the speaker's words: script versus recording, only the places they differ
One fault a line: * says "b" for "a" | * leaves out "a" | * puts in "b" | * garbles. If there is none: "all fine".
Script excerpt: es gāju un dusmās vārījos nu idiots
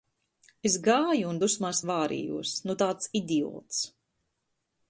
* puts in "tāds"